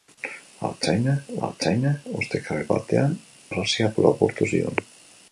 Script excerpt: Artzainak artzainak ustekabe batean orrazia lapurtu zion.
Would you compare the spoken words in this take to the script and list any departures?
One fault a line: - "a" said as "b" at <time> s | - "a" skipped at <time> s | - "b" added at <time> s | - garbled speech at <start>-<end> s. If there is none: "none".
none